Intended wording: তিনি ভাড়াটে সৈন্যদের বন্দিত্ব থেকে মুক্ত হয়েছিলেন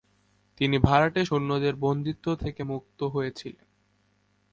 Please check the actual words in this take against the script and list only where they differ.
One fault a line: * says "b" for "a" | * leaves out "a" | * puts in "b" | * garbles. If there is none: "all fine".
all fine